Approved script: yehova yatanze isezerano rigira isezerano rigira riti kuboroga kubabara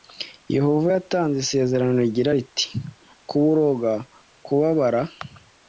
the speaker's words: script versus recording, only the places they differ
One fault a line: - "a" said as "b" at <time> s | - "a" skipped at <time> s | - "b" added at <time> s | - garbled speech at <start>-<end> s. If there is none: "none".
- "isezerano rigira" skipped at 2.3 s